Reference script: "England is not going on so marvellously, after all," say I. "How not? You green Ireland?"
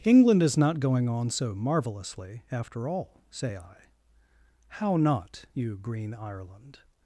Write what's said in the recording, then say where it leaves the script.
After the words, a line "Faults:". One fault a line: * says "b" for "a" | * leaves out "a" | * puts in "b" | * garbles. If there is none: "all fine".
"England is not going on so marvellously, after all," say I. "How not? You green Ireland?"
Faults:
all fine